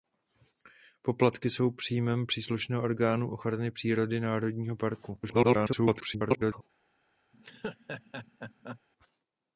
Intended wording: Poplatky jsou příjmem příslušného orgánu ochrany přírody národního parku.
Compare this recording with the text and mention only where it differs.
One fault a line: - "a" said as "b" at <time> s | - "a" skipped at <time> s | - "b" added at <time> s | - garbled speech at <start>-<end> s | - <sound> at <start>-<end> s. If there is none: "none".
- garbled speech at 5.2-6.6 s
- laugh at 7.3-8.8 s